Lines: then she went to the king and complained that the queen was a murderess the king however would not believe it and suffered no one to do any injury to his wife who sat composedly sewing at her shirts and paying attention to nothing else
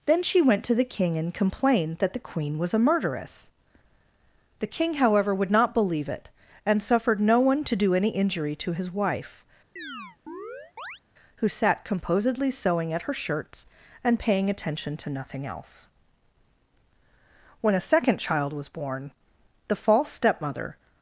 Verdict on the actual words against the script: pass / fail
fail